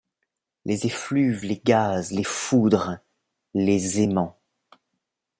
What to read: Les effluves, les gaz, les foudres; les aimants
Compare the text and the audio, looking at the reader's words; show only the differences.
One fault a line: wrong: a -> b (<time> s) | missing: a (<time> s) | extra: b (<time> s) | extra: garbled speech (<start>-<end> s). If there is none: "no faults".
no faults